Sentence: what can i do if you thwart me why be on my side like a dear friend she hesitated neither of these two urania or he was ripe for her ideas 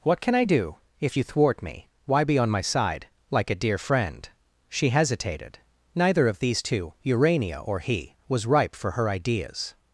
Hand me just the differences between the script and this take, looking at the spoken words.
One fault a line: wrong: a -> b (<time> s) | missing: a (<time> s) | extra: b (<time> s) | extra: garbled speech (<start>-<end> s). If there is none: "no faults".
no faults